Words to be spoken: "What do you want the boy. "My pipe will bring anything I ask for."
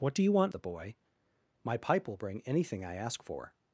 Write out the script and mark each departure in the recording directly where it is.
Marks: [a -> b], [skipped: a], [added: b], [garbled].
"What do you want the boy. "My pipe will bring anything I ask for."